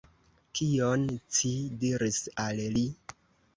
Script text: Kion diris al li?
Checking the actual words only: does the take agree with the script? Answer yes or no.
no